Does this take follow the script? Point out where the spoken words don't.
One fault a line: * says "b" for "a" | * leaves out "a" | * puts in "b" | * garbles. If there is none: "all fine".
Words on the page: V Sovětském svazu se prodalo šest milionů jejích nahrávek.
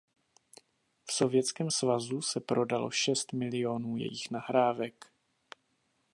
all fine